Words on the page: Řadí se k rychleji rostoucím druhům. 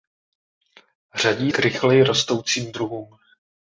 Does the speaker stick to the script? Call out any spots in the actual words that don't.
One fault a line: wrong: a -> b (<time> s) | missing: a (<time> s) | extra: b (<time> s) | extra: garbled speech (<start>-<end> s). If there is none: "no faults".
missing: se (1.5 s)